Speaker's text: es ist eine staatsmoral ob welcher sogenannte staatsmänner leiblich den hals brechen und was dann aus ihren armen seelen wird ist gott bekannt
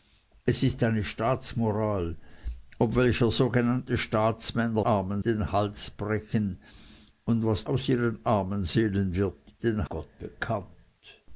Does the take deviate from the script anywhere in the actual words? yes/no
yes